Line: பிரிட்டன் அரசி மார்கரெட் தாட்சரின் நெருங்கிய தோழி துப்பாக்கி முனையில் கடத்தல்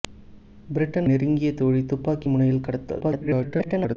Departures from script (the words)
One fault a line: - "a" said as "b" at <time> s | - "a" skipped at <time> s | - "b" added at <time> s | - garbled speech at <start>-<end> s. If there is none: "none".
- "அரசி மார்கரெட் தாட்சரின்" skipped at 1.1 s
- garbled speech at 3.0-4.0 s